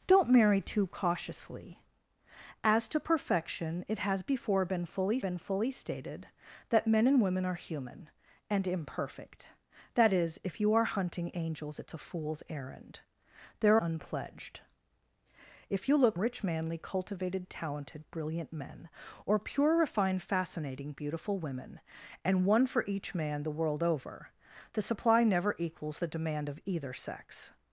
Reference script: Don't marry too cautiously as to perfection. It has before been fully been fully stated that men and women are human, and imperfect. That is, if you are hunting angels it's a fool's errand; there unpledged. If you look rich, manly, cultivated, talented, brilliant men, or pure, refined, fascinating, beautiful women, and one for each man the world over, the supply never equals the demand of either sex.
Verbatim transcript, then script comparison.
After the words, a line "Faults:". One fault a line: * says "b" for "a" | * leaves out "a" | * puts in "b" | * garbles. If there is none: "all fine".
Don't marry too cautiously as to perfection. It has before been fully been fully stated that men and women are human, and imperfect. That is, if you are hunting angels it's a fool's errand; there unpledged. If you look rich, manly, cultivated, talented, brilliant men, or pure, refined, fascinating, beautiful women, and one for each man the world over, the supply never equals the demand of either sex.
Faults:
all fine